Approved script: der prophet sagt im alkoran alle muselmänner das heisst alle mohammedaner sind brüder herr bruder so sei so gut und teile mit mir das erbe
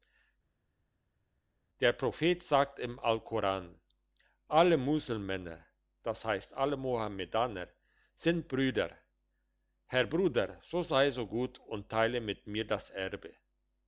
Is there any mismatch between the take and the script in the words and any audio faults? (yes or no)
no